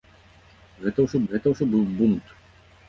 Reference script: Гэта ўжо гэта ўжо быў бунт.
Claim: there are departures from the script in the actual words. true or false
false